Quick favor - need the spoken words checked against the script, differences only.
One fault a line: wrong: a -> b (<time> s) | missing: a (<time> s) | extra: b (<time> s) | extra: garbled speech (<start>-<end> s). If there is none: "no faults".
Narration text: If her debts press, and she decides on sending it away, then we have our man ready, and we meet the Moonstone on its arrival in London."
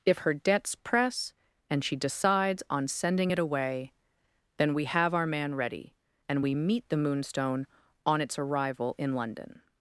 no faults